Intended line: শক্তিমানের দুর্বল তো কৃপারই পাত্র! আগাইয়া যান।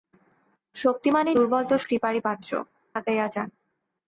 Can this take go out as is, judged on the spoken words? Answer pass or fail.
pass